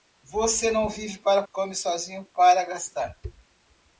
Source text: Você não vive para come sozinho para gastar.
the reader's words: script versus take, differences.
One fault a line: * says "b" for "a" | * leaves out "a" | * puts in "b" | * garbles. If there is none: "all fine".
all fine